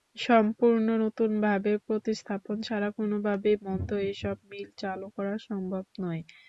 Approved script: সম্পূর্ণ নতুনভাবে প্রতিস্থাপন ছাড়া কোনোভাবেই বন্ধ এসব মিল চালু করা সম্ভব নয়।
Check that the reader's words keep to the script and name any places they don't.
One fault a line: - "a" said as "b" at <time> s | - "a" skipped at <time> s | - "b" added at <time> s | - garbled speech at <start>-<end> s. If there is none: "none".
none